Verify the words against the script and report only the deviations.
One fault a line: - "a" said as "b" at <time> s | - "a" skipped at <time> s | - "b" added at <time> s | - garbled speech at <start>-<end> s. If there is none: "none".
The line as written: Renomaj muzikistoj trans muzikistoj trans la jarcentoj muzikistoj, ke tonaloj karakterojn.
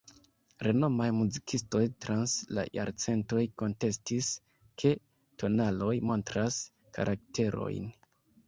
- "muzikistoj trans" skipped at 2.3 s
- "muzikistoj" said as "kontestis" at 3.6 s
- "montras" added at 6.1 s